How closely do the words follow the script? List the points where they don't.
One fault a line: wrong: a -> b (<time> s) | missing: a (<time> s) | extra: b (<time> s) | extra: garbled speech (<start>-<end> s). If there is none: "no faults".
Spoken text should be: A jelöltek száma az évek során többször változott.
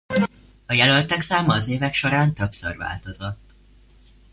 no faults